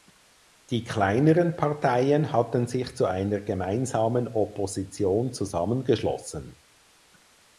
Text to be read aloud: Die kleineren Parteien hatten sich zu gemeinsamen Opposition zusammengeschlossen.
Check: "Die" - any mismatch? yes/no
no